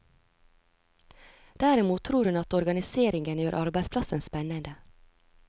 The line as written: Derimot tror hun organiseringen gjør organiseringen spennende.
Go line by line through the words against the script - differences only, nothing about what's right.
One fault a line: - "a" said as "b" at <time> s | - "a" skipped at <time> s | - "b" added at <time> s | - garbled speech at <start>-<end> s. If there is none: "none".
- "at" added at 2.4 s
- "organiseringen" said as "arbeidsplassen" at 3.6 s